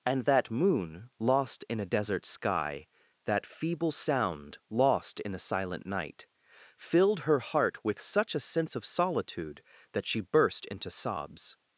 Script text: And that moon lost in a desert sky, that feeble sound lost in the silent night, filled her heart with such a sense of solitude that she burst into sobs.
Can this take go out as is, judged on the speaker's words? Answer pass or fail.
fail